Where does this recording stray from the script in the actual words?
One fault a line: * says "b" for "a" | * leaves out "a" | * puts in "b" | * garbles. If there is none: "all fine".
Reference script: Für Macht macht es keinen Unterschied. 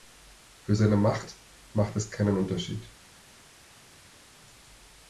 * puts in "seine"